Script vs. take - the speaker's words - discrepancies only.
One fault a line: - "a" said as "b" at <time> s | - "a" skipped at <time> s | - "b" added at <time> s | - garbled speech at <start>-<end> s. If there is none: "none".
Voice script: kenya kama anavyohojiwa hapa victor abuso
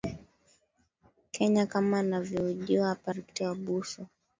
none